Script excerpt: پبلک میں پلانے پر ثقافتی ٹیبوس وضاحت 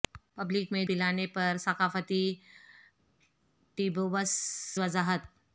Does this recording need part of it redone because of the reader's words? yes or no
no